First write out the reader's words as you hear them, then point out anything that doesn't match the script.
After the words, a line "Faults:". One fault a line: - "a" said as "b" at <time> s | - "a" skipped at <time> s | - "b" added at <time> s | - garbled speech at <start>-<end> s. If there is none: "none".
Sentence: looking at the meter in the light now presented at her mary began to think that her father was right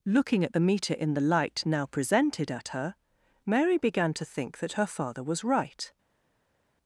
looking at the meter in the light now presented at her mary began to think that her father was right
Faults:
none